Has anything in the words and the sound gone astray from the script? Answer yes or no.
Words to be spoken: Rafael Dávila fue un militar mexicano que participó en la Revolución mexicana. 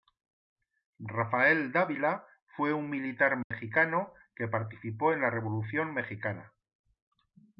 yes